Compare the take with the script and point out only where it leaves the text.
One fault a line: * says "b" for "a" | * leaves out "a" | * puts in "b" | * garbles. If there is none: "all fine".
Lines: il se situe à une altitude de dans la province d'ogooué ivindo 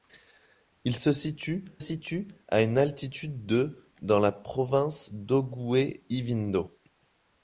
* puts in "situe"